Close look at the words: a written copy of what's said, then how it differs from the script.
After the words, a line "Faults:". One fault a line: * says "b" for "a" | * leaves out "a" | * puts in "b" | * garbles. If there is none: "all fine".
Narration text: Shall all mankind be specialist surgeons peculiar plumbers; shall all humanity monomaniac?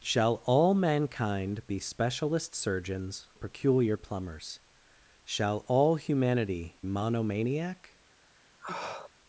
Shall all mankind be specialist surgeons peculiar plumbers; shall all humanity monomaniac?
Faults:
all fine